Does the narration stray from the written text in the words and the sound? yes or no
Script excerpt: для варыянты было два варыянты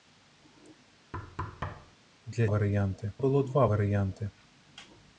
yes